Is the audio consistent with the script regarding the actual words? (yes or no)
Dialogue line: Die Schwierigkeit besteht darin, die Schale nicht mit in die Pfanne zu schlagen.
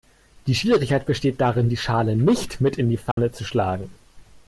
yes